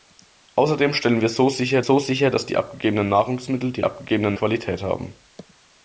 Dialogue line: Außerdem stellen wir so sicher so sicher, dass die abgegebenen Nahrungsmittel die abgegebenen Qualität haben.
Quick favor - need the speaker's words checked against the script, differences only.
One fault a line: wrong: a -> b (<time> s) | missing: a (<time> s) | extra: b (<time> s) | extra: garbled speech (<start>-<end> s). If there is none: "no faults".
no faults